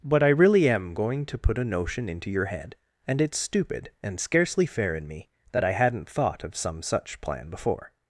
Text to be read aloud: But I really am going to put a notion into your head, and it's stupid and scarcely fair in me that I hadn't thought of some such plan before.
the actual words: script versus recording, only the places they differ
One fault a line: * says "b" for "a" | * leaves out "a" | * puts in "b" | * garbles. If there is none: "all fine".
all fine